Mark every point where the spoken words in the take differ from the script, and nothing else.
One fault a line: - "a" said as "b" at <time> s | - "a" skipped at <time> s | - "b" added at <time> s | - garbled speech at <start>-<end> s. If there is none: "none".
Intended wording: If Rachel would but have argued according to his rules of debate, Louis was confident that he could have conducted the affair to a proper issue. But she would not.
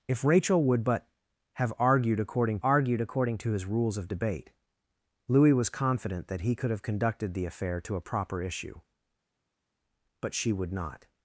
- "argued according" added at 2.6 s